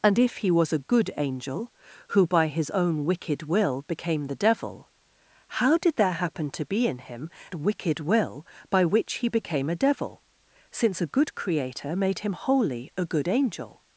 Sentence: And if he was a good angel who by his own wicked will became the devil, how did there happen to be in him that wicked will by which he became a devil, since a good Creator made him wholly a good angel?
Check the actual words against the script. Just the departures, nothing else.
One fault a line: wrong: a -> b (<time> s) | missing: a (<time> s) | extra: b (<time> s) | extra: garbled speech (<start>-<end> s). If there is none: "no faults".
missing: that (7.3 s)